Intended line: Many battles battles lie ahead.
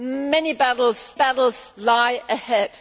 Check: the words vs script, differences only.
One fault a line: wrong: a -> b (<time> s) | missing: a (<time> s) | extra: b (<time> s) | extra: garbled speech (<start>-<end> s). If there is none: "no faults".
no faults